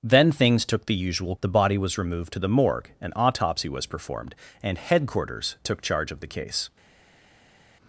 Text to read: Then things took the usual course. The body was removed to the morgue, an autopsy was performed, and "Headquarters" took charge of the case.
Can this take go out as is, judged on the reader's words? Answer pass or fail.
fail